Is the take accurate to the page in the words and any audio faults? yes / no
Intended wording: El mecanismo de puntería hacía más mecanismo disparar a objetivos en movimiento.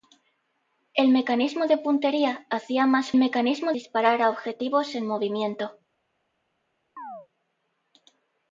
no